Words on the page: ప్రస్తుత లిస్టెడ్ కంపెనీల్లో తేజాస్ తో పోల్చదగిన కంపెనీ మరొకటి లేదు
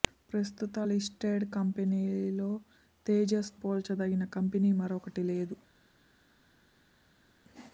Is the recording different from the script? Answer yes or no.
yes